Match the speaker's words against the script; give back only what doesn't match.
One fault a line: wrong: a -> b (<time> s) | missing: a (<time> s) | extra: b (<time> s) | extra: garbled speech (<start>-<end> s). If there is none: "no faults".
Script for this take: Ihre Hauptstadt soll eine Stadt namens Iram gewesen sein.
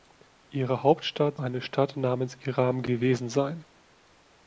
missing: soll (1.4 s)